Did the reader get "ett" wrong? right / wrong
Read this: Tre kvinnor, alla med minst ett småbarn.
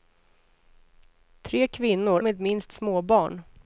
wrong